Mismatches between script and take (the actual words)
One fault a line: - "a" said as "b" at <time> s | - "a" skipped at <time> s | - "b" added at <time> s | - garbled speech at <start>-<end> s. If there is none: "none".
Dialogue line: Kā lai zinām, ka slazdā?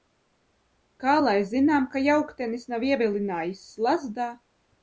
- "jauktenis nav ievilinājis" added at 2.1 s